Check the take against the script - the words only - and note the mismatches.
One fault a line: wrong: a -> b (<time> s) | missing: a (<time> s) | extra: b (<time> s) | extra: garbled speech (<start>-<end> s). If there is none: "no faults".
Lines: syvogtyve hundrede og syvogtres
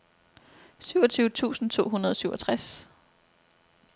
extra: tusind to (1.3 s)